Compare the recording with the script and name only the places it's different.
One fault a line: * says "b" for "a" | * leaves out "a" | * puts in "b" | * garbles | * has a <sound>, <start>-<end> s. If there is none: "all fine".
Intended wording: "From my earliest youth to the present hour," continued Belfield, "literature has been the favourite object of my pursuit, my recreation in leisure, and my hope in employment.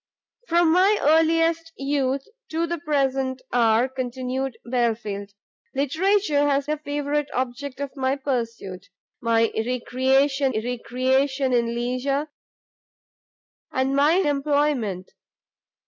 * leaves out "been"
* puts in "recreation"
* leaves out "hope in"